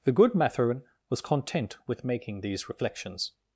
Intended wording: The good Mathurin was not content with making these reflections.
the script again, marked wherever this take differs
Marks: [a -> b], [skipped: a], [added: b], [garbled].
The good Mathurin was [skipped: not] content with making these reflections.